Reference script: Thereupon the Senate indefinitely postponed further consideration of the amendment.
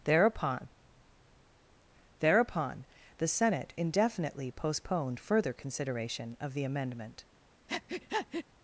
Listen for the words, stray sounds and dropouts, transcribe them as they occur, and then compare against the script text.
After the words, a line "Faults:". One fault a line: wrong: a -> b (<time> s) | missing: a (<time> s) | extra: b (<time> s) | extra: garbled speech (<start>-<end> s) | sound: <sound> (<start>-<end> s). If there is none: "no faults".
Thereupon thereupon the Senate indefinitely postponed further consideration of the amendment.
Faults:
extra: thereupon (2.2 s)
sound: breath (7.7-8.5 s)